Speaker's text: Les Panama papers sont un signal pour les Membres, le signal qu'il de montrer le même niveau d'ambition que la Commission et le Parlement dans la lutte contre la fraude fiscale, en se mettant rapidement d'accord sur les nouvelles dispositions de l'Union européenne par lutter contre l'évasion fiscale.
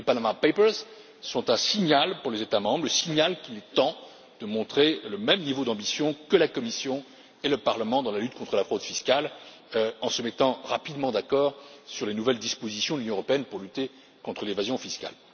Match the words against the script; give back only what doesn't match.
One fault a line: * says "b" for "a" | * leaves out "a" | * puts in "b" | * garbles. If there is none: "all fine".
* puts in "États"
* puts in "est temps"
* says "pour" for "par"